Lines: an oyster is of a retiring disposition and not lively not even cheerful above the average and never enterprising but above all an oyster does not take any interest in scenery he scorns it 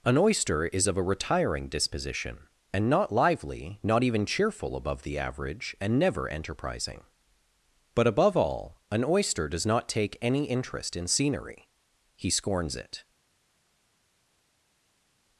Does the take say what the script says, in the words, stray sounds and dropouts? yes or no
yes